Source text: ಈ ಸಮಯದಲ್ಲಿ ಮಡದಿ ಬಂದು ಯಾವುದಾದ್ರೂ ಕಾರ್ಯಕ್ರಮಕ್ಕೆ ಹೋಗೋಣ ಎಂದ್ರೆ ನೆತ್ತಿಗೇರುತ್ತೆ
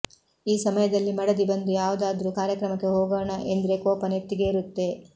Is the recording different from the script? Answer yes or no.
yes